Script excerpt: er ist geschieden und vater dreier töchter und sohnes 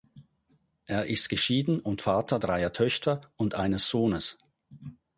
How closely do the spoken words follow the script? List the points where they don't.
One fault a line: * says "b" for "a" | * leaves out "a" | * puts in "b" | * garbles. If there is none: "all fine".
* puts in "eines"